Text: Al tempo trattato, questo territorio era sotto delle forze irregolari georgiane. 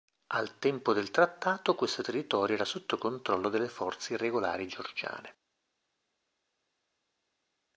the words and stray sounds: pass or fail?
fail